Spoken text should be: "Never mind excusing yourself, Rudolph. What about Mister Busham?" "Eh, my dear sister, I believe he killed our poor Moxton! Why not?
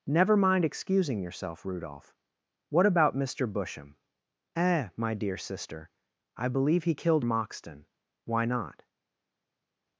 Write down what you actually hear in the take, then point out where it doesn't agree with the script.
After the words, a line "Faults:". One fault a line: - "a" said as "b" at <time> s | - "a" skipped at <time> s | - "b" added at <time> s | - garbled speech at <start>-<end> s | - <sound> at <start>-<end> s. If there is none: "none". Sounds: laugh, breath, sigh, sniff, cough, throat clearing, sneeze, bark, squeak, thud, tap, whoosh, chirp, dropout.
"Never mind excusing yourself, Rudolph. What about Mister Busham?" "Eh, my dear sister, I believe he killed Moxton! Why not?
Faults:
- "our poor" skipped at 7.3 s